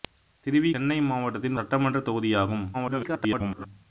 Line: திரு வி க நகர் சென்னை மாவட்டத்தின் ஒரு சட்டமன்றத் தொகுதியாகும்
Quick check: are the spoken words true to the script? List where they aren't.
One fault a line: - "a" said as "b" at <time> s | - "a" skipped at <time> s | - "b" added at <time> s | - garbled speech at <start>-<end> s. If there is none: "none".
- "க நகர்" skipped at 0.7 s
- "ஒரு" skipped at 1.6 s
- garbled speech at 2.7-3.7 s